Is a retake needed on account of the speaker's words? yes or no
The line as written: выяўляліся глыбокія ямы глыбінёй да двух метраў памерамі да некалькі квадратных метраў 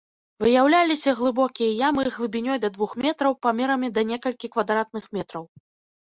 no